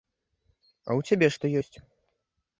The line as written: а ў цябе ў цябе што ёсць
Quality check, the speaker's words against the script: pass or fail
fail